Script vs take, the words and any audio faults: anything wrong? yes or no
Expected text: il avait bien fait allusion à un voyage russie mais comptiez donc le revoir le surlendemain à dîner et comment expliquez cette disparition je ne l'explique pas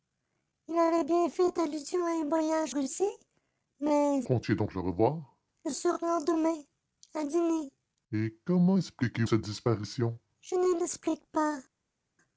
no